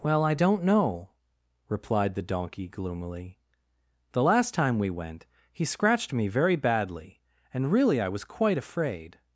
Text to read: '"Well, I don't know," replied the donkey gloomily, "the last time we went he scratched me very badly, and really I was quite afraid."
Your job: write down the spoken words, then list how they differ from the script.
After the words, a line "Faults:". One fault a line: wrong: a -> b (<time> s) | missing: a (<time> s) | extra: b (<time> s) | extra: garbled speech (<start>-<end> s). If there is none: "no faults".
'"Well, I don't know," replied the donkey gloomily, "the last time we went he scratched me very badly, and really I was quite afraid."
Faults:
no faults